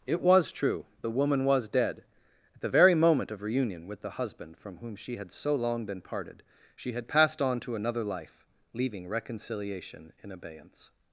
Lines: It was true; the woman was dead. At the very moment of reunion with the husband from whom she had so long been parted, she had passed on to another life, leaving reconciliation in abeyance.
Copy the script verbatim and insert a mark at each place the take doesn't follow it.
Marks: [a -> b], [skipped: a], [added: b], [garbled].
It was true; the woman was dead. At the very moment of reunion with the husband from whom she had so long been parted, she had passed on to another life, leaving reconciliation in abeyance.